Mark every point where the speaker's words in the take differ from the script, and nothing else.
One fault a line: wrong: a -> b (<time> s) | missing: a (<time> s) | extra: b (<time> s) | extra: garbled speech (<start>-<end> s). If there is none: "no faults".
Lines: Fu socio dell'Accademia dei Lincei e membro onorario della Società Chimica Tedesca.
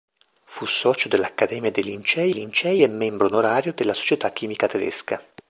extra: Lincei (2.3 s)